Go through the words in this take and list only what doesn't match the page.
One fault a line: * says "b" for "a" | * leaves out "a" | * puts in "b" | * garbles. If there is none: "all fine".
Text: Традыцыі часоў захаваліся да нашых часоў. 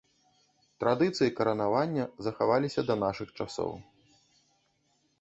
* says "каранавання" for "часоў"